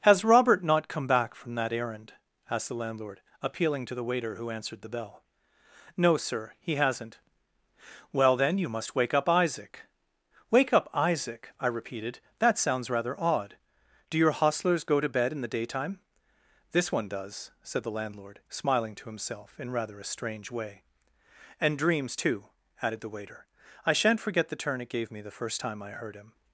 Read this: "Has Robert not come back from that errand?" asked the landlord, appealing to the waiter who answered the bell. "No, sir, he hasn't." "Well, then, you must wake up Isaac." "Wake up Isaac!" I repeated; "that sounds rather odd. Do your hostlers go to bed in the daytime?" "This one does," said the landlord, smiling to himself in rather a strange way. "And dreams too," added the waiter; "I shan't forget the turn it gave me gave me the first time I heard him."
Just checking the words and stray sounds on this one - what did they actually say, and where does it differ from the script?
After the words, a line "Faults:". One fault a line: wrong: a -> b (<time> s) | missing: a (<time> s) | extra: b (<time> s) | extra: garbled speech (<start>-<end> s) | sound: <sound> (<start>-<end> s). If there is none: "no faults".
"Has Robert not come back from that errand?" asked the landlord, appealing to the waiter who answered the bell. "No, sir, he hasn't." "Well, then, you must wake up Isaac." "Wake up Isaac!" I repeated; "that sounds rather odd. Do your hostlers go to bed in the daytime?" "This one does," said the landlord, smiling to himself in rather a strange way. "And dreams too," added the waiter; "I shan't forget the turn it gave me the first time I heard him."
Faults:
missing: gave me (25.2 s)